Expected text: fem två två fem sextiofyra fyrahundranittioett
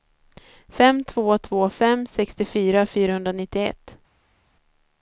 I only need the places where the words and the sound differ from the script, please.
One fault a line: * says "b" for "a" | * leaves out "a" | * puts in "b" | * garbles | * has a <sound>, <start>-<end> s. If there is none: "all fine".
all fine